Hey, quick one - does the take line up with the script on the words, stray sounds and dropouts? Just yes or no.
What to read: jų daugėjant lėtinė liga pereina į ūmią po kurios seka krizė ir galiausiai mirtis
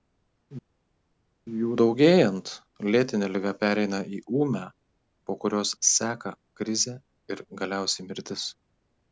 yes